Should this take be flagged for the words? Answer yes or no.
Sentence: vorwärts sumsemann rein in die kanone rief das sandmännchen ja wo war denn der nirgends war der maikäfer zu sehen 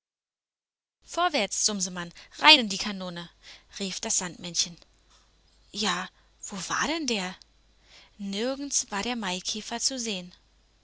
no